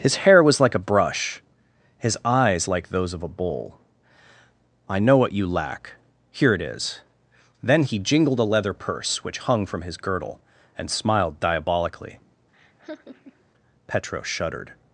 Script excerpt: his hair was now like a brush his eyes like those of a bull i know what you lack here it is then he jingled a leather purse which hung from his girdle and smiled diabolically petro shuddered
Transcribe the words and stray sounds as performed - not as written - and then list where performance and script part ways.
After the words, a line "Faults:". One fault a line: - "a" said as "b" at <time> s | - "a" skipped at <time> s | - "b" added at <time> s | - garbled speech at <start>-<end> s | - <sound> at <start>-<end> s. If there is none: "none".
his hair was like a brush his eyes like those of a bull i know what you lack here it is then he jingled a leather purse which hung from his girdle and smiled diabolically petro shuddered
Faults:
- "now" skipped at 0.6 s
- laugh at 12.5-13.4 s